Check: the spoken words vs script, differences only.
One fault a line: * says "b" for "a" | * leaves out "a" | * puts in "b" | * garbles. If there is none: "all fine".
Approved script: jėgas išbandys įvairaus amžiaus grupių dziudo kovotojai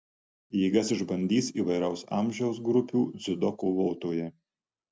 all fine